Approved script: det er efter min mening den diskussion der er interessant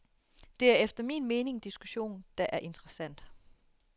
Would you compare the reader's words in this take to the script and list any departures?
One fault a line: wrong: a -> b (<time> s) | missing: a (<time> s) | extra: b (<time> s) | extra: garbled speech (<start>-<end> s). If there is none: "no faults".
missing: den (1.6 s)